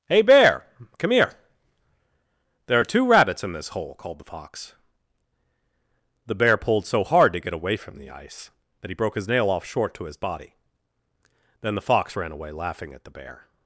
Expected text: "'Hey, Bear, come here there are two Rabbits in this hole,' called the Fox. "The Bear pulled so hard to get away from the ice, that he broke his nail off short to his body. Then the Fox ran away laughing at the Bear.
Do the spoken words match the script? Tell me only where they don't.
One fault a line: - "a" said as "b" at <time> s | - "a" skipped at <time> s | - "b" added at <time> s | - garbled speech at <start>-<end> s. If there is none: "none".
none